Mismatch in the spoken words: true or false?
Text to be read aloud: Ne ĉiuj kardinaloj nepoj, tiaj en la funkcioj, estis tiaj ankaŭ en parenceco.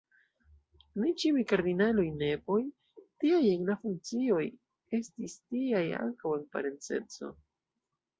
false